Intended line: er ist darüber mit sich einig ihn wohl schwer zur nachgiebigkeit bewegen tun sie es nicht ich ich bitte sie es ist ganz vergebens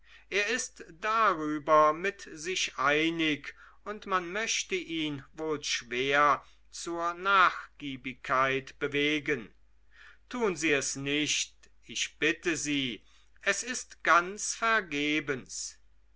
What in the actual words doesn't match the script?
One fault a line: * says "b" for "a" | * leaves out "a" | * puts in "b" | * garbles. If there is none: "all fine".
* puts in "und man möchte"
* leaves out "ich"